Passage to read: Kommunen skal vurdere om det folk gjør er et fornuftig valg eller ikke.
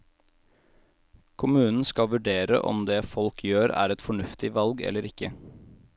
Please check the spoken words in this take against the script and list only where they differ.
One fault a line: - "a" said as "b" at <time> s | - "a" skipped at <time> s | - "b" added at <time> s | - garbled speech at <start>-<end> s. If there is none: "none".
none